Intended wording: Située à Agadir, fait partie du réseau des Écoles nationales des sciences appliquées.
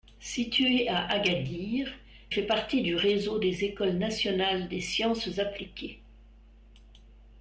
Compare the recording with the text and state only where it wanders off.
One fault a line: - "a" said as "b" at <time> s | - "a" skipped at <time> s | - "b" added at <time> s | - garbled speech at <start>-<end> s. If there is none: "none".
none